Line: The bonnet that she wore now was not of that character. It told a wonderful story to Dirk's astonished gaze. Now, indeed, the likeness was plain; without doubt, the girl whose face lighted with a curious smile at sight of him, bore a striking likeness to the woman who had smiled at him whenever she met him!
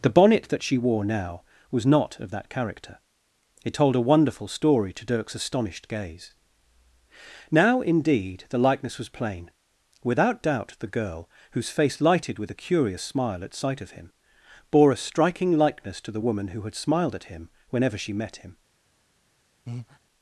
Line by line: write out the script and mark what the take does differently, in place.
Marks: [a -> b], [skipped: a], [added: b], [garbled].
The bonnet that she wore now was not of that character. It told a wonderful story to Dirk's astonished gaze. Now, indeed, the likeness was plain; without doubt, the girl whose face lighted with a curious smile at sight of him, bore a striking likeness to the woman who had smiled at him whenever she met him!